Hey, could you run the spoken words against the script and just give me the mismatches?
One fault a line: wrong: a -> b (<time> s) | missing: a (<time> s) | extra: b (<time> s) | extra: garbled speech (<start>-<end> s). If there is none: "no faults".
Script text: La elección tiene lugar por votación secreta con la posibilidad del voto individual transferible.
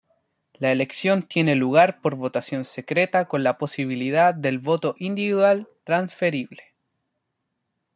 no faults